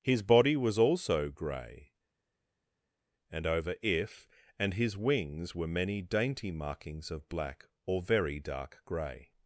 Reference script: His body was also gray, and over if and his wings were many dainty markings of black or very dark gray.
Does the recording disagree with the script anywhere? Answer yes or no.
no